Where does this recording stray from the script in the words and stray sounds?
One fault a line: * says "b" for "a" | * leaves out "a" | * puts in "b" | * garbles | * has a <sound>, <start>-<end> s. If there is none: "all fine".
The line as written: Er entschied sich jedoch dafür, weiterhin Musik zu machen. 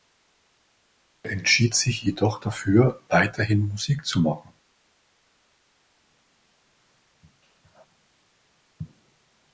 all fine